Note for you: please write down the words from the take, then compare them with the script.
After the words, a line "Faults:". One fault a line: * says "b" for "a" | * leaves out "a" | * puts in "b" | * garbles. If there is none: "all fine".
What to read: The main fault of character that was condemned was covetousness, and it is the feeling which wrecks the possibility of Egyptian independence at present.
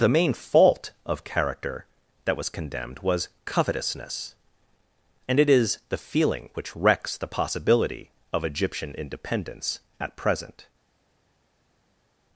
The main fault of character that was condemned was covetousness, and it is the feeling which wrecks the possibility of Egyptian independence at present.
Faults:
all fine